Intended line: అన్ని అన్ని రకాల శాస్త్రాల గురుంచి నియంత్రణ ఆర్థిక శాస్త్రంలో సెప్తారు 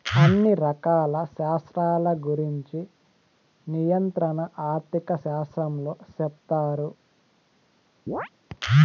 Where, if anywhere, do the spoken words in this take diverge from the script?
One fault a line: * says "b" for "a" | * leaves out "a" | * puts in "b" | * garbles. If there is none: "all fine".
* leaves out "అన్ని"